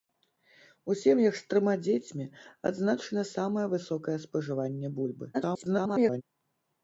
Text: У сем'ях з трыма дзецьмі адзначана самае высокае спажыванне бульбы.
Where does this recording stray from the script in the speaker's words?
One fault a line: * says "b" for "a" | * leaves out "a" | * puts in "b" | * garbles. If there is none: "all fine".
* garbles